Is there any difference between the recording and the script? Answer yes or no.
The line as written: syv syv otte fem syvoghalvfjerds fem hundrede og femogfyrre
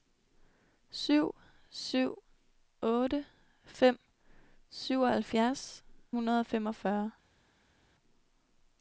yes